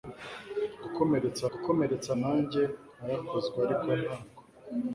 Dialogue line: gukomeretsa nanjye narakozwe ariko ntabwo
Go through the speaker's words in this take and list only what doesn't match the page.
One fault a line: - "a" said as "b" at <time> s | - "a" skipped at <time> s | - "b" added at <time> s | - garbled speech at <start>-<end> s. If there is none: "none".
- "gukomeretsa" added at 1.5 s